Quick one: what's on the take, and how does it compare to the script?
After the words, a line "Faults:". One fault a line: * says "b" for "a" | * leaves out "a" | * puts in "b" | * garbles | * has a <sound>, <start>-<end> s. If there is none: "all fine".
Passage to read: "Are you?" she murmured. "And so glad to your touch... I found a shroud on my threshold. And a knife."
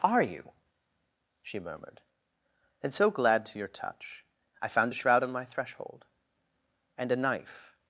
"Are you?" she murmured. "And so glad to your touch... I found a shroud on my threshold. And a knife."
Faults:
all fine